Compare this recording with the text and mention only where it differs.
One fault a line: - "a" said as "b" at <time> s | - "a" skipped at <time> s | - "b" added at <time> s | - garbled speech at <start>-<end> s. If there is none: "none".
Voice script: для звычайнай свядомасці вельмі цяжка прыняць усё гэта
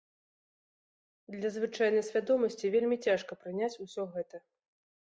none